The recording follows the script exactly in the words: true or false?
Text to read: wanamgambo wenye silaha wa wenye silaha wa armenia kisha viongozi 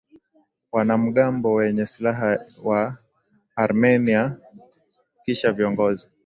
false